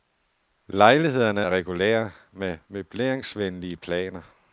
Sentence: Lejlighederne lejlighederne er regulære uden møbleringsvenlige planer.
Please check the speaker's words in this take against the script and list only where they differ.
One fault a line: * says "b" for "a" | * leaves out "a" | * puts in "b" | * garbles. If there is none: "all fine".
* leaves out "lejlighederne"
* says "med" for "uden"